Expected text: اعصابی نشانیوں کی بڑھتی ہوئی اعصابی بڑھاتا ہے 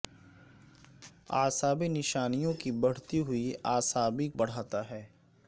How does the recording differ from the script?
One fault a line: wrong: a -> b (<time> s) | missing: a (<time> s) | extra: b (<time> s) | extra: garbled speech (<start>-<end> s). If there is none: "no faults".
no faults